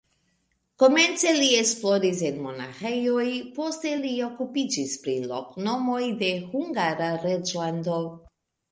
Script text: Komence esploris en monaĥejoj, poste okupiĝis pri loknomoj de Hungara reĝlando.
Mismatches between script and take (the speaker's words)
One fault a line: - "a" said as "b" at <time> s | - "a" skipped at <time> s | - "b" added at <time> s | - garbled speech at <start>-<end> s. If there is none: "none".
- "li" added at 1.4 s
- "li" added at 4.0 s